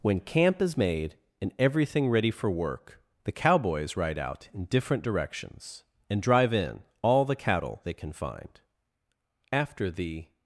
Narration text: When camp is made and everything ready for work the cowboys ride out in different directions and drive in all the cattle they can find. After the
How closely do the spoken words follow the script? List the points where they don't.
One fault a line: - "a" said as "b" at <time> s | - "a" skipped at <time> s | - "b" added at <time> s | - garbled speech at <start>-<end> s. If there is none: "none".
none